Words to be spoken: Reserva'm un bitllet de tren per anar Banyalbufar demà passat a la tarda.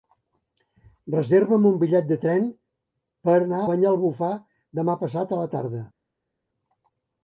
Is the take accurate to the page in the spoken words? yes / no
yes